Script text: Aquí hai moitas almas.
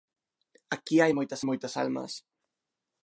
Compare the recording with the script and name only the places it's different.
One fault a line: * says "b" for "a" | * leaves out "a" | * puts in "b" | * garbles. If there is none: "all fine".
* puts in "moitas"